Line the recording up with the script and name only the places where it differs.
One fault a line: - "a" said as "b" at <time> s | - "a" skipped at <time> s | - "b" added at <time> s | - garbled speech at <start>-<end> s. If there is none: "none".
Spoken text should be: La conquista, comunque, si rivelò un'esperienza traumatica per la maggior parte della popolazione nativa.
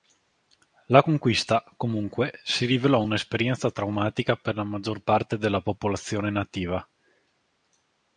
none